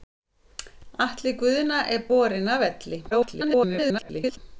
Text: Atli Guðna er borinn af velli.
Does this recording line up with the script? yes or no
no